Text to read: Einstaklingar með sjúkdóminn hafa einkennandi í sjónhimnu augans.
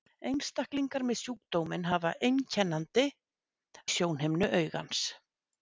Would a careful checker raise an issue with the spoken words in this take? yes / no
no